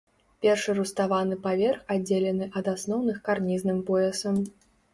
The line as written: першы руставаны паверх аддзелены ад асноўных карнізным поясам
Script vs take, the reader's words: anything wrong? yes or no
no